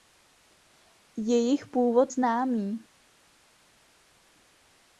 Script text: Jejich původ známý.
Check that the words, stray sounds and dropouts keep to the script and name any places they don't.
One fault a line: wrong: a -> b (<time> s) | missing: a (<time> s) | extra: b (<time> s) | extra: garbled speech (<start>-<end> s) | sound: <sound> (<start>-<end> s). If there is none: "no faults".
no faults